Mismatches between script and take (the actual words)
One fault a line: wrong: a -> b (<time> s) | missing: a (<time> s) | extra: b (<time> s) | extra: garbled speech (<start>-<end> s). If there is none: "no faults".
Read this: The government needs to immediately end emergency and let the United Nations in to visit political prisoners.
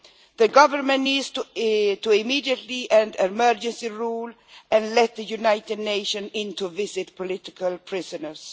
extra: rule (3.9 s)